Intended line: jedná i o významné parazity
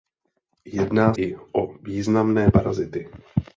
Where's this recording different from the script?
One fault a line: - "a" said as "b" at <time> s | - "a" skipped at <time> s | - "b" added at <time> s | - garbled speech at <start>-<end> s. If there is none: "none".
none